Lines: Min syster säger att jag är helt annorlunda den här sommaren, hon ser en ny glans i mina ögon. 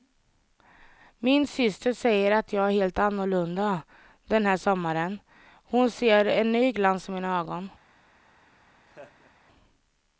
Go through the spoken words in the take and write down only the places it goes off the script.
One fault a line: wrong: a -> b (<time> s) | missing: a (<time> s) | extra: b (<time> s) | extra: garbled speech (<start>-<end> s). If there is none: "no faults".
no faults